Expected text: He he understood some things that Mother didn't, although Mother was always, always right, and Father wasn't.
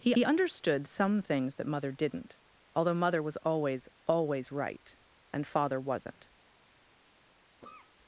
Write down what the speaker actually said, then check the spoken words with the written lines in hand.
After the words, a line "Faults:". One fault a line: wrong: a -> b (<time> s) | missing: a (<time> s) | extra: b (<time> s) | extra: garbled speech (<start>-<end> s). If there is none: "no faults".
He he understood some things that Mother didn't, although Mother was always, always right, and Father wasn't.
Faults:
no faults